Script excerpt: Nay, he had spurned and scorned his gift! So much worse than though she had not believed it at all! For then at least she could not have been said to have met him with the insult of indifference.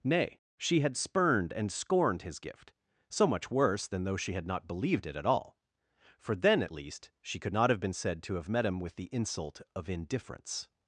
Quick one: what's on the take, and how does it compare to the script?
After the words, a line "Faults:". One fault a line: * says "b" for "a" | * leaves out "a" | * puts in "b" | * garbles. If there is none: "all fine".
Nay, she had spurned and scorned his gift! So much worse than though she had not believed it at all! For then at least she could not have been said to have met him with the insult of indifference.
Faults:
* says "she" for "he"